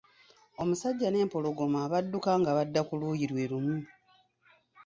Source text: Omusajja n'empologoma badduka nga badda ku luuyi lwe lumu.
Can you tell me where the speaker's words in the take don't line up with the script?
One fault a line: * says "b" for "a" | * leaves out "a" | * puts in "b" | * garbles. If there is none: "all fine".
all fine